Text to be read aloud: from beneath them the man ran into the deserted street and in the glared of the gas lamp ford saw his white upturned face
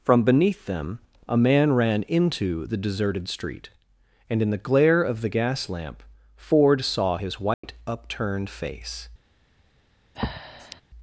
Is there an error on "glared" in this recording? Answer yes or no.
yes